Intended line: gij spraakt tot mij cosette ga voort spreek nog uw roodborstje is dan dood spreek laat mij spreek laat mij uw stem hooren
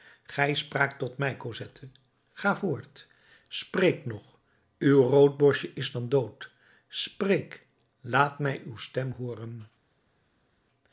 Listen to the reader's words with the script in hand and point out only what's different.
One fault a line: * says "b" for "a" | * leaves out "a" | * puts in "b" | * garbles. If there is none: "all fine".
* leaves out "spreek laat mij"